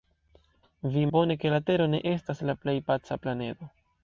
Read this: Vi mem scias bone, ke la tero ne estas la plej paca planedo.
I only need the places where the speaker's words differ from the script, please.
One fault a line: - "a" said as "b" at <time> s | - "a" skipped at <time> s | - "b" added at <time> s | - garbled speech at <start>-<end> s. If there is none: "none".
- "mem scias" skipped at 1.0 s